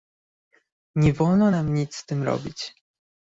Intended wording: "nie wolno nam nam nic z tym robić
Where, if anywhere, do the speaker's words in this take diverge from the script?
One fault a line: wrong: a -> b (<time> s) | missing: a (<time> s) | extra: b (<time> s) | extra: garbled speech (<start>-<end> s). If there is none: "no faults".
missing: nam (1.7 s)